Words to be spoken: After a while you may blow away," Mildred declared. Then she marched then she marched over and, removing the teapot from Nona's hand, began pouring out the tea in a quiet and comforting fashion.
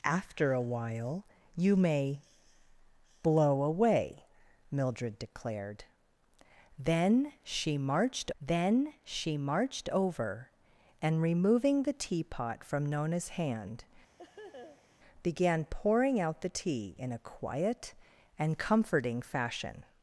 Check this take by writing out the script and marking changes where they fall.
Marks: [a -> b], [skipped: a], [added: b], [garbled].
After a while you may blow away," Mildred declared. Then she marched then she marched over and, removing the teapot from Nona's hand, began pouring out the tea in a quiet and comforting fashion.